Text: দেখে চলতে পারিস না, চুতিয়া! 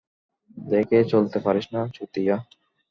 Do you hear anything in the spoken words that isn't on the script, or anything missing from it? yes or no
no